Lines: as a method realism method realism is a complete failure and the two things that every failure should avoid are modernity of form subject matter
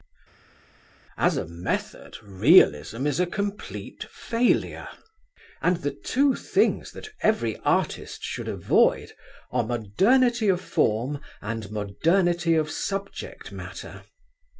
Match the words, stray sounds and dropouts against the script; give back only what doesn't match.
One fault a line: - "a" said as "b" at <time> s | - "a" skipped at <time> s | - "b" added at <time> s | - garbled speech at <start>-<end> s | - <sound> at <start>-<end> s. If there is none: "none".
- "method realism" skipped at 3.1 s
- "failure" said as "artist" at 7.6 s
- "and modernity of" added at 11.4 s